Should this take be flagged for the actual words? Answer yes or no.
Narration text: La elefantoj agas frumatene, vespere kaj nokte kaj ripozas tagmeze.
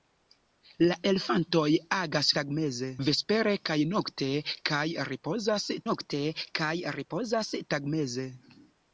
yes